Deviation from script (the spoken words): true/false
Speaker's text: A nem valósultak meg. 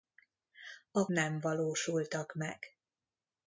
false